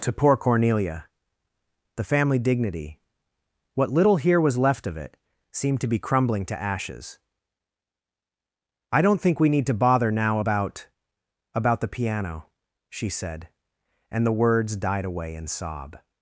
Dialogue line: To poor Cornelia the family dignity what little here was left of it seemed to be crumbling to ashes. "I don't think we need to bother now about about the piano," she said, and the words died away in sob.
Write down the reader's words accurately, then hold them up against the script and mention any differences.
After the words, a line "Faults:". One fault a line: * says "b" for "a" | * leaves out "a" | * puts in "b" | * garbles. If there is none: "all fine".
To poor Cornelia the family dignity what little here was left of it seemed to be crumbling to ashes. "I don't think we need to bother now about about the piano," she said, and the words died away in sob.
Faults:
all fine